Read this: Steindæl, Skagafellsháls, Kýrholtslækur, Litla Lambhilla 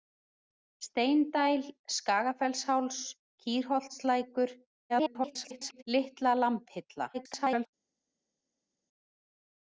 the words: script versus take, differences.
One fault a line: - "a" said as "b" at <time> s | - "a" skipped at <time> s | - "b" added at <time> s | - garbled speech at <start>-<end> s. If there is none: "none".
- garbled speech at 4.9-5.8 s
- garbled speech at 7.1-7.7 s